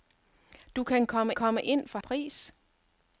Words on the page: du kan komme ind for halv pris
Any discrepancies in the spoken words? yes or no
yes